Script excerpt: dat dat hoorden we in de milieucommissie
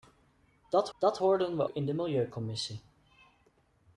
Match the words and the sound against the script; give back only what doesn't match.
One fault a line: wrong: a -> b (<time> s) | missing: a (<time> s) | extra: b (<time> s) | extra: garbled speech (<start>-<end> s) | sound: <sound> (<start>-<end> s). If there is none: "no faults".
no faults